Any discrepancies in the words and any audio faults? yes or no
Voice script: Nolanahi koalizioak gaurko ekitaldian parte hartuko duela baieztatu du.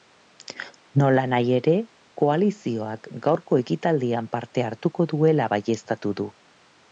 yes